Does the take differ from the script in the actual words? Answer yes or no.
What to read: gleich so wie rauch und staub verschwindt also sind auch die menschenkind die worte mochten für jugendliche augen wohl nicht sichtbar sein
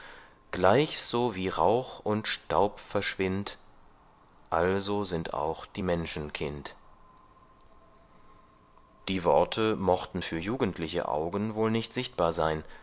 no